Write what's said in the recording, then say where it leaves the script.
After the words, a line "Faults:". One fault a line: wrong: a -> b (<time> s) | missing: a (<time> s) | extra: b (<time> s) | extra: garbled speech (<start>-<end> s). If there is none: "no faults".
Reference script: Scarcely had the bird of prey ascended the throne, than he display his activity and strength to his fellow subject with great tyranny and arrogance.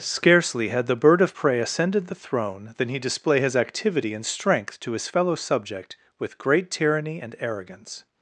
Scarcely had the bird of prey ascended the throne, than he display his activity and strength to his fellow subject with great tyranny and arrogance.
Faults:
no faults